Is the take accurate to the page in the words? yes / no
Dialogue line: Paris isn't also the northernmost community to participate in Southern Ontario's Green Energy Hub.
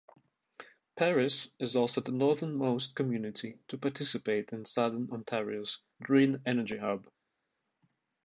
no